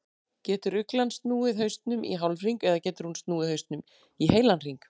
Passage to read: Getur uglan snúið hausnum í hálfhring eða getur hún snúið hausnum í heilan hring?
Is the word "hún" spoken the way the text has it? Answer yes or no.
yes